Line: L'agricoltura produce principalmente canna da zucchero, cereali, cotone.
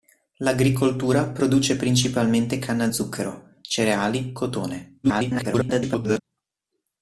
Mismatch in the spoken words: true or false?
true